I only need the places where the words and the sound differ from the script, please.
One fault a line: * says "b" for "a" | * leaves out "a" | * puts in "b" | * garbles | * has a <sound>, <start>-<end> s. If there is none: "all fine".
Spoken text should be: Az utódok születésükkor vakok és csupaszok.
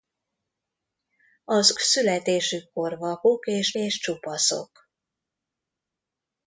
* leaves out "utódok"
* puts in "és"